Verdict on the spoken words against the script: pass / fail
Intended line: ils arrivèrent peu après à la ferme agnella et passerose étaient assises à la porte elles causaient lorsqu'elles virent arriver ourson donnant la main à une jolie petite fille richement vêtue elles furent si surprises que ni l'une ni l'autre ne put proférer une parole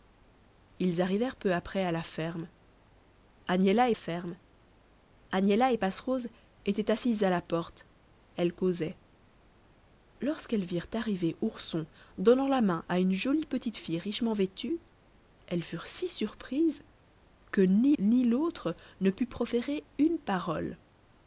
fail